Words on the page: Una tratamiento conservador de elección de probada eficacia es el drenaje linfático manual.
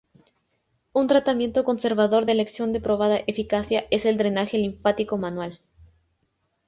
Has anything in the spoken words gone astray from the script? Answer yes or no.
yes